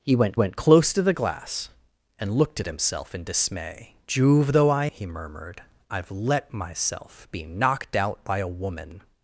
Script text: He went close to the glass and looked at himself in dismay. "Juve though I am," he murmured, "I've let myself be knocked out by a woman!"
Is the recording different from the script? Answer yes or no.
yes